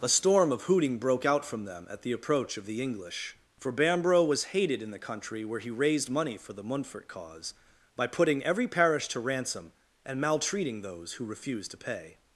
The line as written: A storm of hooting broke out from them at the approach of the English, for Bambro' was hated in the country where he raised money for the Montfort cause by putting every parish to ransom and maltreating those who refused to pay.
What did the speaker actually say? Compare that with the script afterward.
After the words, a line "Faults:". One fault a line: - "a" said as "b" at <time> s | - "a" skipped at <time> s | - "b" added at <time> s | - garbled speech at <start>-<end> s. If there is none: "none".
A storm of hooting broke out from them at the approach of the English, for Bambro' was hated in the country where he raised money for the Montfort cause by putting every parish to ransom and maltreating those who refused to pay.
Faults:
none